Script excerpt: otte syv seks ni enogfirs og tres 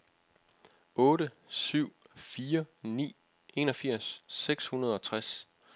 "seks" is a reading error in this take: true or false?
true